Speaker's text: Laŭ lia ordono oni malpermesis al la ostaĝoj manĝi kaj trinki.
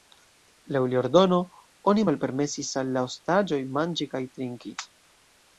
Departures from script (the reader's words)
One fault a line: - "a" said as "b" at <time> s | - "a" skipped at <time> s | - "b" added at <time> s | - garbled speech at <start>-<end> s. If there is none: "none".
none